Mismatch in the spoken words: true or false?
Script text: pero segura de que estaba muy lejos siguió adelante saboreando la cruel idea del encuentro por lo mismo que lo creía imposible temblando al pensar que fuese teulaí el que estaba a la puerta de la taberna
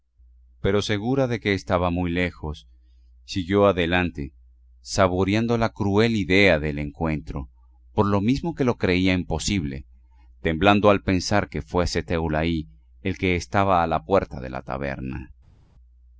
false